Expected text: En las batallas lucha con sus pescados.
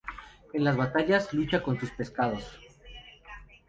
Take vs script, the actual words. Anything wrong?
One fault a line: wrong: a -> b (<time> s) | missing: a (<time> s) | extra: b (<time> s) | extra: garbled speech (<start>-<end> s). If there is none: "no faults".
no faults